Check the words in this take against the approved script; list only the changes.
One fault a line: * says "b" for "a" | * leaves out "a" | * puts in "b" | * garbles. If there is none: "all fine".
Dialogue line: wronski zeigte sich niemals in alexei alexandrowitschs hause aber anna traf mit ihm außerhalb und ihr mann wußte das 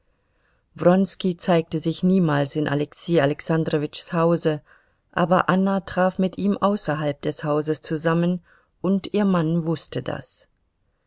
* puts in "des hauses zusammen"